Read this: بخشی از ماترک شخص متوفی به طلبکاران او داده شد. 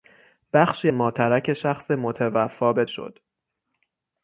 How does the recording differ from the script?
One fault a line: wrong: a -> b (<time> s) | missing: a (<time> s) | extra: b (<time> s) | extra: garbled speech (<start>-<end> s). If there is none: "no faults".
missing: از (0.9 s)
missing: طلبکاران او داده (2.8 s)